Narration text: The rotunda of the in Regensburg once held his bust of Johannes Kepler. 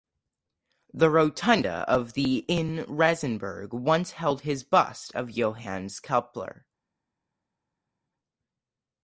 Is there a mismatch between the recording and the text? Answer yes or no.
no